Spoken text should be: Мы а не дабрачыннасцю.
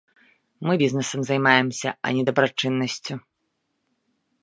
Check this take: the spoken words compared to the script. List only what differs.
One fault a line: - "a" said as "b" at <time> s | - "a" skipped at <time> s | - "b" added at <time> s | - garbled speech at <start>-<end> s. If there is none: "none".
- "бізнэсам займаемся" added at 0.8 s